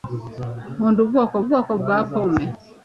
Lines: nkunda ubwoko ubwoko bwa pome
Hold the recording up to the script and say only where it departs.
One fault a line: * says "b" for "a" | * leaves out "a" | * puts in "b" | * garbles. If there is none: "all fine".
all fine